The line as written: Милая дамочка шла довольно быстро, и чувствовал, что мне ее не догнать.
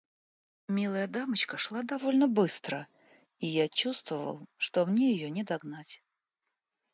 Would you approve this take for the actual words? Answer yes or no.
no